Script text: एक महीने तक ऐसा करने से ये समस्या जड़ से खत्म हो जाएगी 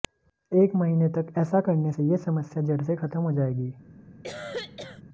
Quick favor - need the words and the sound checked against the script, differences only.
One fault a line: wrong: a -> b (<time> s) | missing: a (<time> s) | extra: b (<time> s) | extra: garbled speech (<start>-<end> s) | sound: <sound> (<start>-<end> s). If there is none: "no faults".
sound: cough (4.2-5.0 s)